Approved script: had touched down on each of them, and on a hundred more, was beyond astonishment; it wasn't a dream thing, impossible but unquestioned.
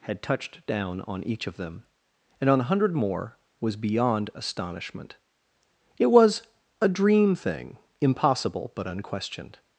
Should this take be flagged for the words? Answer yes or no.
yes